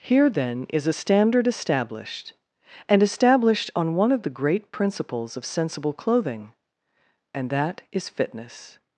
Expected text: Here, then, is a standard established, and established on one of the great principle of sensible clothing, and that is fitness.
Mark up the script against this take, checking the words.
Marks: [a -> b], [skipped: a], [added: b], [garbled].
Here, then, is a standard established, and established on one of the great [principle -> principles] of sensible clothing, and that is fitness.